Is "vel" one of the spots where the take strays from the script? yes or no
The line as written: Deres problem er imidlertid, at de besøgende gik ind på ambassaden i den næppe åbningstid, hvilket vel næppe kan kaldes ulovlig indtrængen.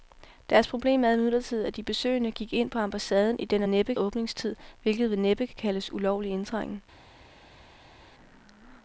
no